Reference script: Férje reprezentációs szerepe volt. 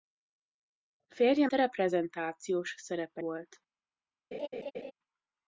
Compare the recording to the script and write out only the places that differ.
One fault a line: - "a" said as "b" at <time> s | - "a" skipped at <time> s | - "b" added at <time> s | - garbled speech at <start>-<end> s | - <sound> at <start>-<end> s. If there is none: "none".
- laugh at 4.3-4.9 s